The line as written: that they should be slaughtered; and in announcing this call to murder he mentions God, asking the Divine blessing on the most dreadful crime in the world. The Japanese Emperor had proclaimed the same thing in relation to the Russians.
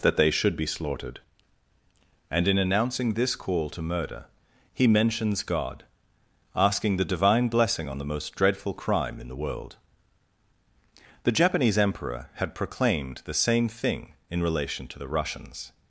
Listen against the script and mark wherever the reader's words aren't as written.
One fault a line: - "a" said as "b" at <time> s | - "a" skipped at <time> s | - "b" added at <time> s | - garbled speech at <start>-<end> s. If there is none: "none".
none